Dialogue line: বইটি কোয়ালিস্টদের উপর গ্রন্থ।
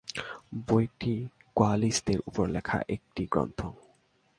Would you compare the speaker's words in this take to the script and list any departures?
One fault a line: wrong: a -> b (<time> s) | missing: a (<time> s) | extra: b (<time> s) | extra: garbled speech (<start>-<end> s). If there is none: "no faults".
extra: লেখা একটি (2.5 s)